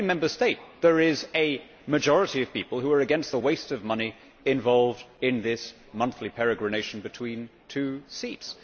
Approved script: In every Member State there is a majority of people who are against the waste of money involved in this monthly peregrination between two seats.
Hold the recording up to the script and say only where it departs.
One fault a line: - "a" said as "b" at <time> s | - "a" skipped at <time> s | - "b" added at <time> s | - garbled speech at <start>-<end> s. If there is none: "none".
none